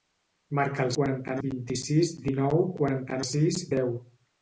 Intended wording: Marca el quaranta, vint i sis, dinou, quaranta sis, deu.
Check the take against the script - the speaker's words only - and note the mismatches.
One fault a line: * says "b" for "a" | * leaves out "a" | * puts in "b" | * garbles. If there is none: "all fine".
all fine